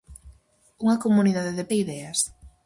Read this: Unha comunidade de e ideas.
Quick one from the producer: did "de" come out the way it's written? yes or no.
yes